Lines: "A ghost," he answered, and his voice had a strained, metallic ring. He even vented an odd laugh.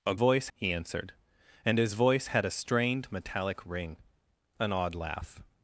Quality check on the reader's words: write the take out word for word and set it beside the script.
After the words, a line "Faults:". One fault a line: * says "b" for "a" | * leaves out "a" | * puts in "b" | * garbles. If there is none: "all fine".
"A voice," he answered, and his voice had a strained, metallic ring. An odd laugh.
Faults:
* says "voice" for "ghost"
* leaves out "He even vented"